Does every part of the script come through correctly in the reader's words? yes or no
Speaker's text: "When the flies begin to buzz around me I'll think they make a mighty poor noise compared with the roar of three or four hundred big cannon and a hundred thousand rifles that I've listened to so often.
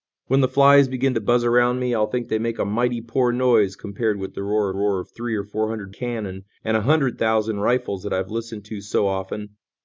no